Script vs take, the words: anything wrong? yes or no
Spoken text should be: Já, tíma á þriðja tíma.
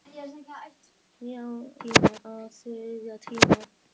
no